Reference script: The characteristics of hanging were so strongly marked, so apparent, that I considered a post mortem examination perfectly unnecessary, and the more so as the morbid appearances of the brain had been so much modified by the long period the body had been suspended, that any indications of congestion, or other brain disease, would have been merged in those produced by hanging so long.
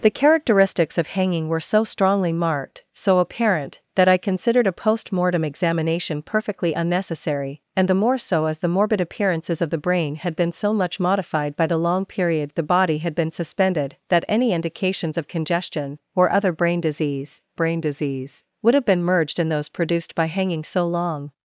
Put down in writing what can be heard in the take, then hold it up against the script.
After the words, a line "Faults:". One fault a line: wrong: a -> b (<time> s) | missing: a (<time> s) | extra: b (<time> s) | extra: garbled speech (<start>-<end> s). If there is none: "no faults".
The characteristics of hanging were so strongly marked, so apparent, that I considered a post mortem examination perfectly unnecessary, and the more so as the morbid appearances of the brain had been so much modified by the long period the body had been suspended, that any indications of congestion, or other brain disease brain disease, would have been merged in those produced by hanging so long.
Faults:
extra: brain disease (17.5 s)